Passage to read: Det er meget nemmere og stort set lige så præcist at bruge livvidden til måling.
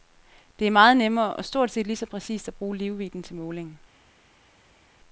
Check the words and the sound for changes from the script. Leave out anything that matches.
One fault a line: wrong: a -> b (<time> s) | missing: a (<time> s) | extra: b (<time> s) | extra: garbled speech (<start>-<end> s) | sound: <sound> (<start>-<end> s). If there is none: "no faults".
no faults